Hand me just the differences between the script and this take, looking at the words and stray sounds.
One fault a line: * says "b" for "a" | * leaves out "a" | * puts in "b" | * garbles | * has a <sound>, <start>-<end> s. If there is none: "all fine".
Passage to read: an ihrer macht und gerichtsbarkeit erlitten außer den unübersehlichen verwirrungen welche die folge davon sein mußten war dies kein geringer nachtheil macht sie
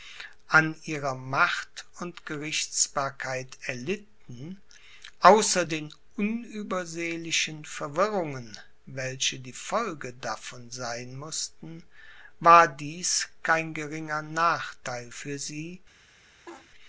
* says "für" for "macht"
* has a laugh, 16.5-16.7 s